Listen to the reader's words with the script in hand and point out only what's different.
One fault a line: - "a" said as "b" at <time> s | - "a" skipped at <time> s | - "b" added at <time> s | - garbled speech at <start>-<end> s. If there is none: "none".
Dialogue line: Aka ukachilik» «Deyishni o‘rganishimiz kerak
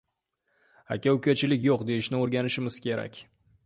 - "Yo‘q" added at 1.7 s